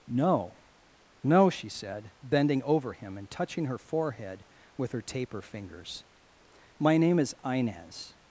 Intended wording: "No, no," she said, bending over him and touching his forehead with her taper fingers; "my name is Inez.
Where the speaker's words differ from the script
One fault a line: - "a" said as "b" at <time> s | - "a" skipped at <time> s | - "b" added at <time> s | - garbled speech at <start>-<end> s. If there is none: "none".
- "his" said as "her" at 3.6 s